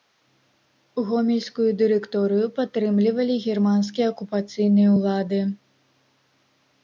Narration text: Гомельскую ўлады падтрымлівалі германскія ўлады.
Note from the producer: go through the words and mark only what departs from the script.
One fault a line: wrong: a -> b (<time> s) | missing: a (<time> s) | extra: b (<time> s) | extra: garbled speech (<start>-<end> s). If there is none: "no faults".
wrong: ўлады -> дырэкторыю (1.8 s)
extra: акупацыйныя (4.1 s)